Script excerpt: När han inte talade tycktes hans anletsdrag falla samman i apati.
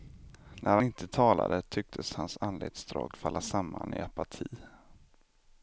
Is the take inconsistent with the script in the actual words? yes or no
yes